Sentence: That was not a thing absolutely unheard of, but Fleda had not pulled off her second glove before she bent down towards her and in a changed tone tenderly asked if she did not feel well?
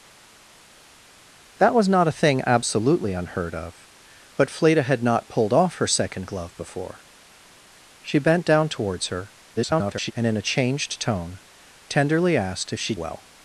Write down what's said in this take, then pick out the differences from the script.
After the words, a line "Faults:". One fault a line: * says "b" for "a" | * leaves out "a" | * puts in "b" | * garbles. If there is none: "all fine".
That was not a thing absolutely unheard of, but Fleda had not pulled off her second glove before she bent down towards her [garbled] and in a changed tone tenderly asked if she well?
Faults:
* garbles
* leaves out "did not feel"